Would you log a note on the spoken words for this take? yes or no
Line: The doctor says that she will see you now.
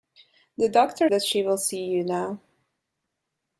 yes